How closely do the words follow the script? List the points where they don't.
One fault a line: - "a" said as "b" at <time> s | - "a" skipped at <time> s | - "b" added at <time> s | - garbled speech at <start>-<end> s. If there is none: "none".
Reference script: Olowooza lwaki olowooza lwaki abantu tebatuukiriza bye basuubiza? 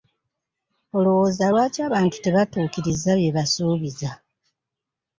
- "olowooza lwaki" skipped at 1.8 s